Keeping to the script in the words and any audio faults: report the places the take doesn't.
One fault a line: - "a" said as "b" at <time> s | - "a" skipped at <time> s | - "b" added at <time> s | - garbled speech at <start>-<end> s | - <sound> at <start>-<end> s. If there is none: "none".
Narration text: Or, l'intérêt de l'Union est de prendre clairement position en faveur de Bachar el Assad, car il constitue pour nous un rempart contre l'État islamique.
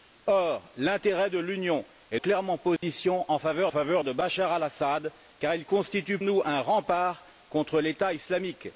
- "de prendre" skipped at 2.2 s
- dropout at 2.8-2.8 s
- "faveur" added at 3.7 s
- "pour" skipped at 6.2 s